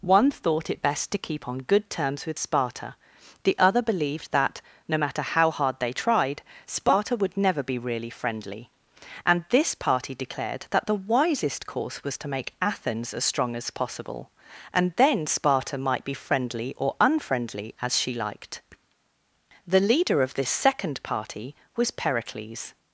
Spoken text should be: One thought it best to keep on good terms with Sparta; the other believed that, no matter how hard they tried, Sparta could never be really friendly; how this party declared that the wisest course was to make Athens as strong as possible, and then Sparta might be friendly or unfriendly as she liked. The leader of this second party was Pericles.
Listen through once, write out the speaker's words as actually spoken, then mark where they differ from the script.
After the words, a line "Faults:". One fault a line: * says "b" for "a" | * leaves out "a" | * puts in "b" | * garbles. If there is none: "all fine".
One thought it best to keep on good terms with Sparta; the other believed that, no matter how hard they tried, Sparta would never be really friendly; and this party declared that the wisest course was to make Athens as strong as possible, and then Sparta might be friendly or unfriendly as she liked. The leader of this second party was Pericles.
Faults:
* says "would" for "could"
* says "and" for "how"